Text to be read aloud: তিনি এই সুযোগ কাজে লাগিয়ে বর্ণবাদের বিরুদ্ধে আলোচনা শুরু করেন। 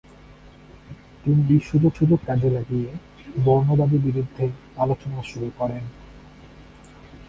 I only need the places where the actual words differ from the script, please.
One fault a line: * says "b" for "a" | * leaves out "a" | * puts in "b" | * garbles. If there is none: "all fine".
* puts in "সুযোগ"